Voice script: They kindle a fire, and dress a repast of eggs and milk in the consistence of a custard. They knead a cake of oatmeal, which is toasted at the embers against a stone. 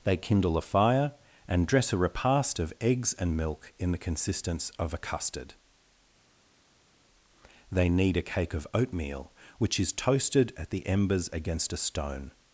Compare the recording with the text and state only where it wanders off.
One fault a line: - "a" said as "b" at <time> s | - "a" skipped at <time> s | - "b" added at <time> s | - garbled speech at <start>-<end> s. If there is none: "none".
none